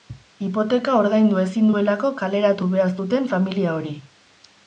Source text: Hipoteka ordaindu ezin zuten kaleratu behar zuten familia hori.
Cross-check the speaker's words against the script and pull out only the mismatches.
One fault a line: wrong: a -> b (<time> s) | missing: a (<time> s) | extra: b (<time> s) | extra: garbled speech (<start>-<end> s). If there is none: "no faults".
wrong: zuten -> duelako (1.7 s)